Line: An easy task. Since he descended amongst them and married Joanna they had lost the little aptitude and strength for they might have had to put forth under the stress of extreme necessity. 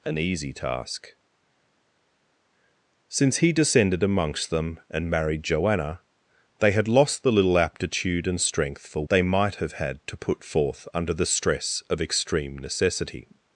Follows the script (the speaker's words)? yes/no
yes